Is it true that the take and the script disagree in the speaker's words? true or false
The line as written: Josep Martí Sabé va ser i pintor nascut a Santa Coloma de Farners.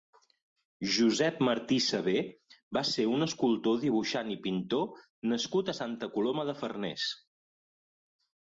true